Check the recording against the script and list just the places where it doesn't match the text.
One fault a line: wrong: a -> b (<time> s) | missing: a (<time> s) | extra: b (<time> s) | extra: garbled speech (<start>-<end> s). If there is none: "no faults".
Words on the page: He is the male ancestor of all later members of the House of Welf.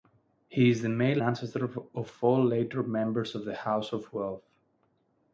no faults